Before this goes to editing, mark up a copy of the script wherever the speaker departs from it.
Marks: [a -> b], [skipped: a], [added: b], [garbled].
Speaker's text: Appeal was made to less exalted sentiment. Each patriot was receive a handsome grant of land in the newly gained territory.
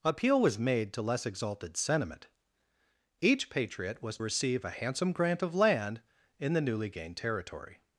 Appeal was made to less exalted sentiment. Each patriot was receive a handsome grant of land in the newly gained territory.